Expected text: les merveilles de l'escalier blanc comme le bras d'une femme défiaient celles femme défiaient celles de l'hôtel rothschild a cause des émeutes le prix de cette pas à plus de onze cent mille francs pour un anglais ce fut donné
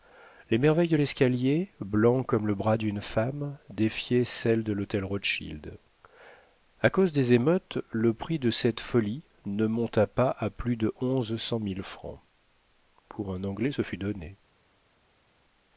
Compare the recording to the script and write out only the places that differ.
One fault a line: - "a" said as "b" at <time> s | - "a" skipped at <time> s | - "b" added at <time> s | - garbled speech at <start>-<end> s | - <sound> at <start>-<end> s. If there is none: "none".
- "femme défiaient celles" skipped at 4.6 s
- "folie ne monta" added at 8.8 s